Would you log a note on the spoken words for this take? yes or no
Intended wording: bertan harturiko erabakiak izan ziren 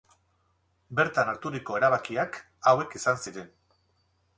yes